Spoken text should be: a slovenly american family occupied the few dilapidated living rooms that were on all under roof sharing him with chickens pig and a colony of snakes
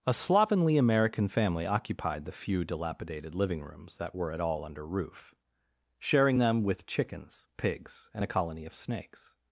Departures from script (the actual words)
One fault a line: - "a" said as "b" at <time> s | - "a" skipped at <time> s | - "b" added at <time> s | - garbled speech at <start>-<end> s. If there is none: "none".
- "on" said as "at" at 4.3 s
- "him" said as "them" at 6.4 s
- "pig" said as "pigs" at 7.6 s